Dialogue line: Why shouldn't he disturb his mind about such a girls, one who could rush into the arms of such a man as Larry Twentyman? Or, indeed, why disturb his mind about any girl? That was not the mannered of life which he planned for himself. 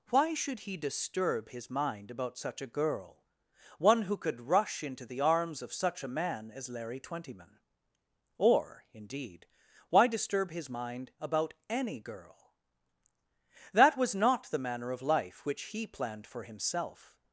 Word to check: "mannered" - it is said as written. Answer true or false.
false